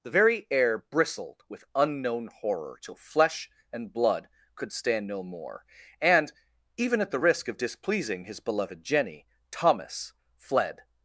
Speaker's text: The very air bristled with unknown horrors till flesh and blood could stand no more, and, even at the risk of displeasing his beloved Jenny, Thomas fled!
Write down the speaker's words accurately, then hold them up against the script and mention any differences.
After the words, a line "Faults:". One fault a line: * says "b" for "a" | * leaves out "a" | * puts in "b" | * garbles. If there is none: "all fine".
The very air bristled with unknown horror till flesh and blood could stand no more, and, even at the risk of displeasing his beloved Jenny, Thomas fled!
Faults:
* says "horror" for "horrors"